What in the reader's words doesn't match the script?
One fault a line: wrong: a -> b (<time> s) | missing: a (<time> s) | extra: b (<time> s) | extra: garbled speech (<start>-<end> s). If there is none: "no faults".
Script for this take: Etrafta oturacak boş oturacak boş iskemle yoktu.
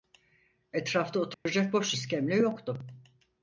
missing: oturacak boş (1.9 s)